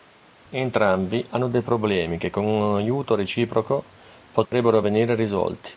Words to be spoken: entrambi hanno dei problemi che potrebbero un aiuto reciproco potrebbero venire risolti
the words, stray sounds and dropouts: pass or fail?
fail